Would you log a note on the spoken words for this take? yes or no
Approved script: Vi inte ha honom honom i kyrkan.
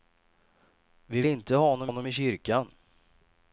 no